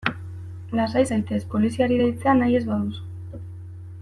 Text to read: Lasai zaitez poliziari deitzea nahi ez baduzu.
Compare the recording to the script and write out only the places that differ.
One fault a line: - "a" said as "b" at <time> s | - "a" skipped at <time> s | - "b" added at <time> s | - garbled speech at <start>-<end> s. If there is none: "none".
none